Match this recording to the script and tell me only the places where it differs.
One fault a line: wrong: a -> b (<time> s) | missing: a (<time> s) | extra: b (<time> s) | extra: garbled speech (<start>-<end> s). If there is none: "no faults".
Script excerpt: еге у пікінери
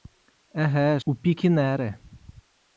no faults